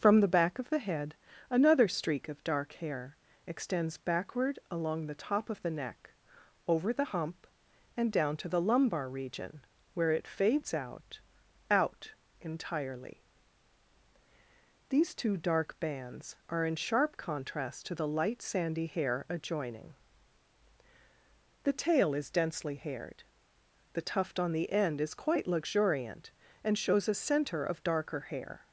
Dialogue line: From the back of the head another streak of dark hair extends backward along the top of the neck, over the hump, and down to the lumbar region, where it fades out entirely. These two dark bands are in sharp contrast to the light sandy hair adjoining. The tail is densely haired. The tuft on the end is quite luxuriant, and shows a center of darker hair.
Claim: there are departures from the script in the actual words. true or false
true